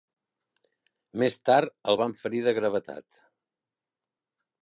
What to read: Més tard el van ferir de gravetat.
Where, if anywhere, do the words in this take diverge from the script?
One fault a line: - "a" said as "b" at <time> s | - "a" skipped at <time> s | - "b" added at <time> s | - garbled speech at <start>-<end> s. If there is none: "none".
none